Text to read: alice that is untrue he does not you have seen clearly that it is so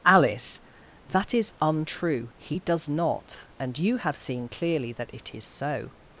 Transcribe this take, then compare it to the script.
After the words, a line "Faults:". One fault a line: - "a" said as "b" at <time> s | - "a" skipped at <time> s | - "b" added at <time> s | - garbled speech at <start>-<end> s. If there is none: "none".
alice that is untrue he does not and you have seen clearly that it is so
Faults:
- "and" added at 3.6 s